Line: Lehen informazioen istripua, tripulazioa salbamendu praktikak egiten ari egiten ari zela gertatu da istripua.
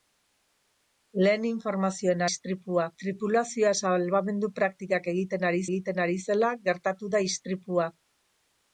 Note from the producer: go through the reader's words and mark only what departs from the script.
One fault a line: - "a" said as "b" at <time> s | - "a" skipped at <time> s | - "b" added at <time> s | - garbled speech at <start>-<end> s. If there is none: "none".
none